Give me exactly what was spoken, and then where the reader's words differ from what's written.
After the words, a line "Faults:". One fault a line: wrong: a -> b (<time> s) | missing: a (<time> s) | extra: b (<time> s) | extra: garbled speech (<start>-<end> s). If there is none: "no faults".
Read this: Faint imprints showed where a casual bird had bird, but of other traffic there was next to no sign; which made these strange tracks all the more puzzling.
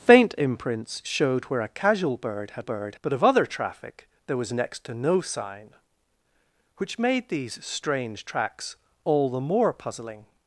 Faint imprints showed where a casual bird had bird, but of other traffic there was next to no sign; which made these strange tracks all the more puzzling.
Faults:
no faults